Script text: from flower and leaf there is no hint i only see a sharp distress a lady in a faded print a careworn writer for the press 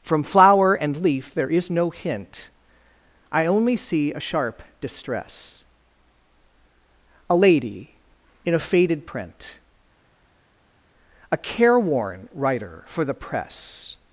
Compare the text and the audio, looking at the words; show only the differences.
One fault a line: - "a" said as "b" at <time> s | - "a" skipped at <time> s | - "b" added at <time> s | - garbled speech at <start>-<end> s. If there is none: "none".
none